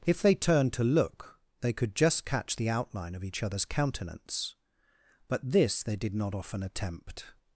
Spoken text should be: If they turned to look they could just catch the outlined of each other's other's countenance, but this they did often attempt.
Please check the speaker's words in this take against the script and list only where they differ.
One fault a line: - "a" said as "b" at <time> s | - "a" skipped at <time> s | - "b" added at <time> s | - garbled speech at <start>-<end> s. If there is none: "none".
- "outlined" said as "outline" at 2.7 s
- "other's" skipped at 3.6 s
- "not" added at 6.2 s